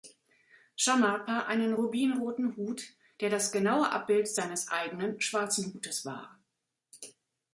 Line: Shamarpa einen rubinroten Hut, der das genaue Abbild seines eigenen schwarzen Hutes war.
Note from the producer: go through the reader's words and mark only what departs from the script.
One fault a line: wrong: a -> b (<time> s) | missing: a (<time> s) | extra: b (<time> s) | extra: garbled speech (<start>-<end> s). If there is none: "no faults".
no faults